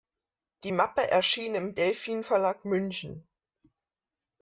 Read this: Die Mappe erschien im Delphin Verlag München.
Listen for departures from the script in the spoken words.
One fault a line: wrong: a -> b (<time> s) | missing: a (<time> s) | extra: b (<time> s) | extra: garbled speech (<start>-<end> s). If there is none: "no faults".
no faults